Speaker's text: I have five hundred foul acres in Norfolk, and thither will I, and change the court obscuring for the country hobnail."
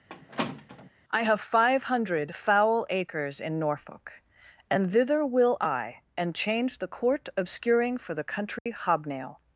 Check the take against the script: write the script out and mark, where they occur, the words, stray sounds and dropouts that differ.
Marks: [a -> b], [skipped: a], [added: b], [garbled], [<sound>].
[squeak] I have five hundred foul acres in Norfolk, and thither will I, and change the court obscuring for the country [dropout] hobnail."